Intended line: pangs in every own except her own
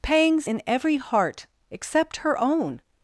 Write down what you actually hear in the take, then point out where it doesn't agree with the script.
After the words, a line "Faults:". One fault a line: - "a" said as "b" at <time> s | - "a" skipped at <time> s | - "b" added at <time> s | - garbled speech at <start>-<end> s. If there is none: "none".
pangs in every heart except her own
Faults:
- "own" said as "heart" at 1.0 s